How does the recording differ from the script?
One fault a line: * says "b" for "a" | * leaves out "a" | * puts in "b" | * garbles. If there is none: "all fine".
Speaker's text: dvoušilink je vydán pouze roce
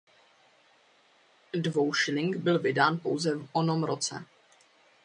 * says "byl" for "je"
* puts in "v onom"